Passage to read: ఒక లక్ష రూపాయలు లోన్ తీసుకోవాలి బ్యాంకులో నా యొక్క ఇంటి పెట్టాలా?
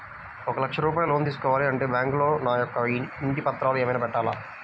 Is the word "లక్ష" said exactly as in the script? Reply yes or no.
yes